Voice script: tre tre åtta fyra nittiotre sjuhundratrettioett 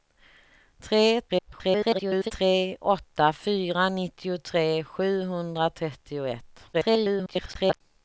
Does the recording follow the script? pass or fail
fail